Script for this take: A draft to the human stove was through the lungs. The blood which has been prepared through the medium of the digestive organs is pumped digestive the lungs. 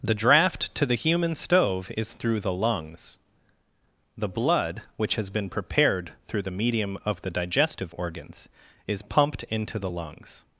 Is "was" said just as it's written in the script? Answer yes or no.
no